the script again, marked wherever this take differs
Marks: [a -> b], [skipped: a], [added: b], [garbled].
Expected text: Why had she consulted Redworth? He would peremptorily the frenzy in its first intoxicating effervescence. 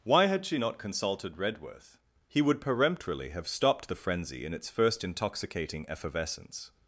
Why had she [added: not] consulted Redworth? He would peremptorily [added: have stopped] the frenzy in its first intoxicating effervescence.